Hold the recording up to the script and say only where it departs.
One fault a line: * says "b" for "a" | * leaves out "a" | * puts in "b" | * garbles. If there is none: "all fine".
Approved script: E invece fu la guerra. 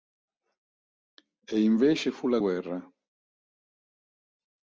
all fine